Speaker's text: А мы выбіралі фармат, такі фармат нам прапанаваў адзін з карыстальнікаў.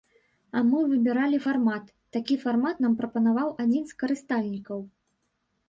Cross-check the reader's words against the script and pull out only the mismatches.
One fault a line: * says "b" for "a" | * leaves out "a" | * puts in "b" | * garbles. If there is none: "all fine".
all fine